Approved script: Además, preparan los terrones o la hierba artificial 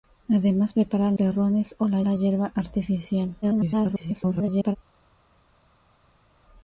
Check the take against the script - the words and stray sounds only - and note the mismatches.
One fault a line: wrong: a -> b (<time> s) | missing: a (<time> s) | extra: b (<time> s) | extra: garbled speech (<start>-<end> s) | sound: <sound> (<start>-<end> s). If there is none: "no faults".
missing: los (1.1 s)
extra: la (2.0 s)
extra: garbled speech (3.4-4.8 s)